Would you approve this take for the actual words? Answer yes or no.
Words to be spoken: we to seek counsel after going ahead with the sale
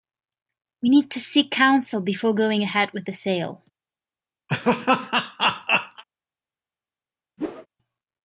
no